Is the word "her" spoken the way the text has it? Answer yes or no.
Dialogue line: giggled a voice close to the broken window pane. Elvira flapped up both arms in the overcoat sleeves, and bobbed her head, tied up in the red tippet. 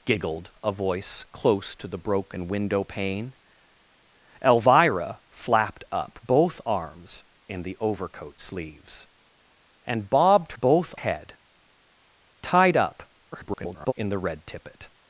no